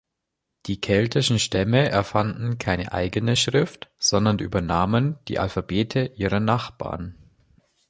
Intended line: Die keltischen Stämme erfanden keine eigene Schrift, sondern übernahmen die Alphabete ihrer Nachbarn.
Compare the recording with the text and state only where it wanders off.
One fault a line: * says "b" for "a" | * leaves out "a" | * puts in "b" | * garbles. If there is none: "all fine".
all fine